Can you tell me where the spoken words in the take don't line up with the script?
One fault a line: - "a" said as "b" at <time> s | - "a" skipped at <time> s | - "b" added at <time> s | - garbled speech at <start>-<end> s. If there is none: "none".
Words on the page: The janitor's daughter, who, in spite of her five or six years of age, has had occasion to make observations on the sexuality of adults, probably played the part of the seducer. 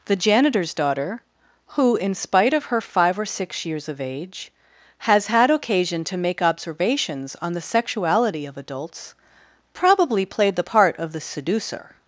none